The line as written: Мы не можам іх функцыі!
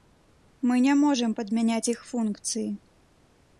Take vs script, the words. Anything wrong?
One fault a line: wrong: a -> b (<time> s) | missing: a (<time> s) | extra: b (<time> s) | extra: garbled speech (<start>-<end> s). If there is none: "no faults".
extra: падмяняць (1.4 s)